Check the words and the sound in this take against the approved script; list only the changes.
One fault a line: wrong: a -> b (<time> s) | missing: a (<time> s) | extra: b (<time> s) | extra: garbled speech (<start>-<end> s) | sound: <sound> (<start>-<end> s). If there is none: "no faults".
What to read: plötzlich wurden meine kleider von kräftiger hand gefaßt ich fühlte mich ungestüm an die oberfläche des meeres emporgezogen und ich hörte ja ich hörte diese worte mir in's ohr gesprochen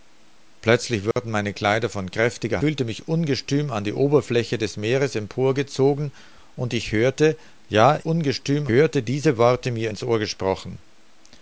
sound: dropout (1.1-1.2 s)
missing: hand gefaßt ich (2.6 s)
wrong: ich -> ungestüm (8.0 s)